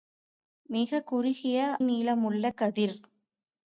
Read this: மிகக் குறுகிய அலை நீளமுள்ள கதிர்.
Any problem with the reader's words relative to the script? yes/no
yes